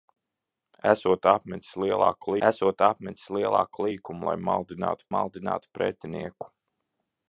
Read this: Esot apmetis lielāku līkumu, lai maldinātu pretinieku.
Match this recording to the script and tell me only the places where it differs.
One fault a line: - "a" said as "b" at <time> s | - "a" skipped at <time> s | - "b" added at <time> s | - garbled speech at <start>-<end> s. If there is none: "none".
- "esot apmetis lielāku" added at 2.5 s
- "maldinātu" added at 5.2 s